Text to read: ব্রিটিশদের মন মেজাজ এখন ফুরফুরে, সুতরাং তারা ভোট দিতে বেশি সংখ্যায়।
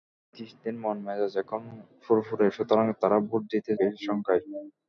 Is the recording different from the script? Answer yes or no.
no